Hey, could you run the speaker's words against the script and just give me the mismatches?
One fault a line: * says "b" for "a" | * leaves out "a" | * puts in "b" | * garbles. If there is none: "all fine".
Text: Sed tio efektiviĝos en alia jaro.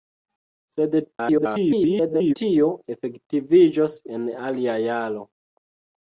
* garbles